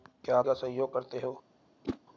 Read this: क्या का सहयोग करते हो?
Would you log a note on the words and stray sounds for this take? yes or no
yes